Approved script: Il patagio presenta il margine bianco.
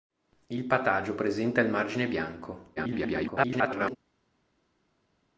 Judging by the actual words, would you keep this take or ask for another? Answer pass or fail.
fail